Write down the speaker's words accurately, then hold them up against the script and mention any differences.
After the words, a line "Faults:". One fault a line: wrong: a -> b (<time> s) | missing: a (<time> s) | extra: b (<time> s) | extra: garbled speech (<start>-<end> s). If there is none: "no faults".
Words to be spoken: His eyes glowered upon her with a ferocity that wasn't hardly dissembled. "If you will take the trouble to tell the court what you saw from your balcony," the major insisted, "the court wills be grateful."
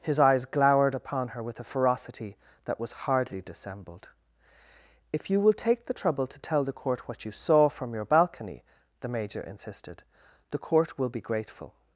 His eyes glowered upon her with a ferocity that was hardly dissembled. "If you will take the trouble to tell the court what you saw from your balcony," the major insisted, "the court will be grateful."
Faults:
wrong: wasn't -> was (2.8 s)
wrong: wills -> will (11.0 s)